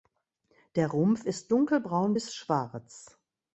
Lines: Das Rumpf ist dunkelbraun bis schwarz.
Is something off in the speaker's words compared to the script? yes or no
yes